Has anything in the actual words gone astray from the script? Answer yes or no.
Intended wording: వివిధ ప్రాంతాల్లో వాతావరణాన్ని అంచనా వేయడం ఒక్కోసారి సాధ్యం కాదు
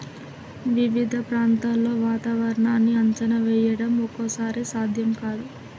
no